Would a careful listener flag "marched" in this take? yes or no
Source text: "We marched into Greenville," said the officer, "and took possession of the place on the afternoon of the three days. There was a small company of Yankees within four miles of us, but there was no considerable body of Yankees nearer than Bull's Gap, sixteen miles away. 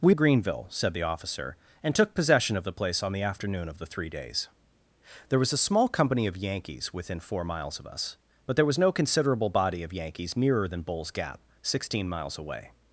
yes